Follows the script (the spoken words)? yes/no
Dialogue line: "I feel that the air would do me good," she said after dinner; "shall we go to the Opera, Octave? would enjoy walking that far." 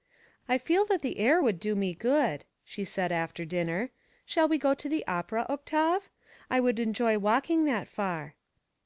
no